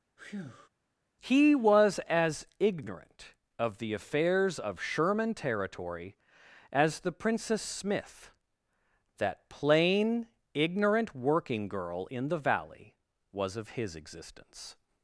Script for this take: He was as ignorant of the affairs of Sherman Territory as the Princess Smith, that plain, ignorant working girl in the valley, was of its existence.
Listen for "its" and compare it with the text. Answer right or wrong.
wrong